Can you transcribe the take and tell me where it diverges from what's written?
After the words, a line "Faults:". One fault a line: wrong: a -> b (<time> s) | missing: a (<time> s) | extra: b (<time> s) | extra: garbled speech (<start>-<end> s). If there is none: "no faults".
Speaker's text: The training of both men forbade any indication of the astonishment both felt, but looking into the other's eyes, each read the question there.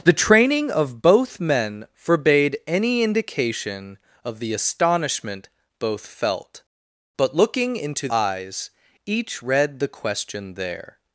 The training of both men forbade any indication of the astonishment both felt, but looking into eyes, each read the question there.
Faults:
missing: the other's (8.1 s)